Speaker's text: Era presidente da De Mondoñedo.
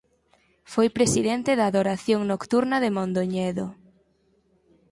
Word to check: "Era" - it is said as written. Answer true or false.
false